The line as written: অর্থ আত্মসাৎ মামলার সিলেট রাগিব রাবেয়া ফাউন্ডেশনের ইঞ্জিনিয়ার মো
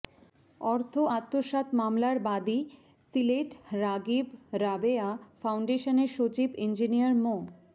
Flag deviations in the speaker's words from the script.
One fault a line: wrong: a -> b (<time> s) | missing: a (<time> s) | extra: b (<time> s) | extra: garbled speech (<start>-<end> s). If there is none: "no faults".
extra: বাদী (2.2 s)
extra: সচিব (6.2 s)